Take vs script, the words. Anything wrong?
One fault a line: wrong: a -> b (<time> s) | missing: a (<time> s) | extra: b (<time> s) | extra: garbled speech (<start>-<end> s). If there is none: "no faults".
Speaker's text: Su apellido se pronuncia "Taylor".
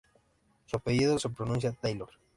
no faults